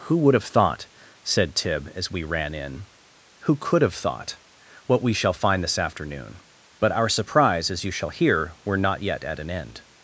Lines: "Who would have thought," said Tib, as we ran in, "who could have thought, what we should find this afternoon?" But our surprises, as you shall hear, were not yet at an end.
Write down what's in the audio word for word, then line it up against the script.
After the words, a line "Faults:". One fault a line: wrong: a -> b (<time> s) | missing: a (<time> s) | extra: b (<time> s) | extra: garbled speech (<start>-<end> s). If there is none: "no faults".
"Who would have thought," said Tib, as we ran in, "who could have thought, what we shall find this afternoon?" But our surprise, as you shall hear, were not yet at an end.
Faults:
wrong: should -> shall (5.1 s)
wrong: surprises -> surprise (7.1 s)